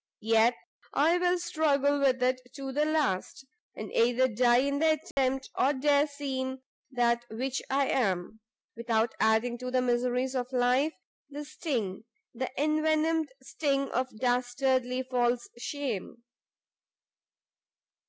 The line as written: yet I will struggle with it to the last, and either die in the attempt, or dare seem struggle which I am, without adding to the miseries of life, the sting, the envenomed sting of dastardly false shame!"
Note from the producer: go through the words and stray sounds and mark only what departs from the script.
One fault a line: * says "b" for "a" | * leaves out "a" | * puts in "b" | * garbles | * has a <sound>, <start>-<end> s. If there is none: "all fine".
* has a dropout, 5.1-5.2 s
* says "that" for "struggle"